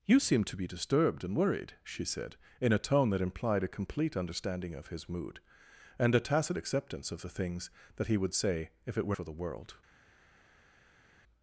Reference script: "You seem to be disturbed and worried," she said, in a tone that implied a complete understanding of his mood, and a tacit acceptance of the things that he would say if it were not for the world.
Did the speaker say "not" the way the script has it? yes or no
no